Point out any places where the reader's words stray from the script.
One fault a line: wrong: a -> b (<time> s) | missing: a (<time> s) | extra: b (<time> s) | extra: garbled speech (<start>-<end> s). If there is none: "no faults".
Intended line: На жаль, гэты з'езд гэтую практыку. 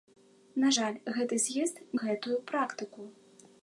no faults